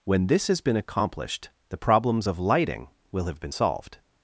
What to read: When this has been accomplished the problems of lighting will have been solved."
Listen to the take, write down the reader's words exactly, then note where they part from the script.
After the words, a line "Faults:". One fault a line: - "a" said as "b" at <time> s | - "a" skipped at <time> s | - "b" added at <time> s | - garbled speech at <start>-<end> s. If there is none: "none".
When this has been accomplished the problems of lighting will have been solved."
Faults:
none